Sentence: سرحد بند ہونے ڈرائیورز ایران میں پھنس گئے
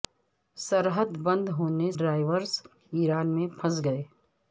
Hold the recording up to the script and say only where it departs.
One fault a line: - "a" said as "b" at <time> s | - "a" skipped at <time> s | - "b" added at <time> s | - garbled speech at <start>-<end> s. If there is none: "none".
none